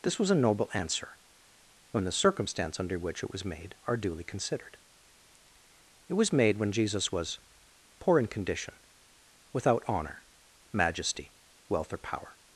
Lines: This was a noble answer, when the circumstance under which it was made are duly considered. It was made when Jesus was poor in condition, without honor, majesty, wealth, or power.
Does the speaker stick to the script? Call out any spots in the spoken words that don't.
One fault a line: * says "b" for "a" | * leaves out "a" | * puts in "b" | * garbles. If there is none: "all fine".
all fine